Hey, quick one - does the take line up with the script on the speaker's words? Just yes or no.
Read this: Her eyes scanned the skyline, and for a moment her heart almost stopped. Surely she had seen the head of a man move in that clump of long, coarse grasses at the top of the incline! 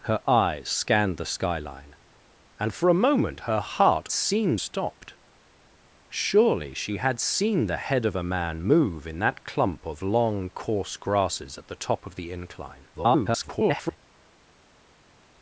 no